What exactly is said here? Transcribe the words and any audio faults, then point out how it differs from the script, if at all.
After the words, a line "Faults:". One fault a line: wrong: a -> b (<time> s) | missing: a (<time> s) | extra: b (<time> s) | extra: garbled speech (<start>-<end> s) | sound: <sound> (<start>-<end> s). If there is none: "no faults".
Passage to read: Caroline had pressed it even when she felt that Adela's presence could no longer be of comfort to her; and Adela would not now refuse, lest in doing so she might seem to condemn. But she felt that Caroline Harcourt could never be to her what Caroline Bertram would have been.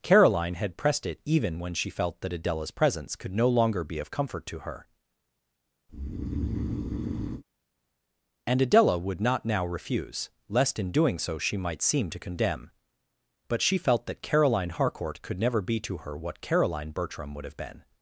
Caroline had pressed it even when she felt that Adela's presence could no longer be of comfort to her; and Adela would not now refuse, lest in doing so she might seem to condemn. But she felt that Caroline Harcourt could never be to her what Caroline Bertram would have been.
Faults:
sound: breath (5.9-7.4 s)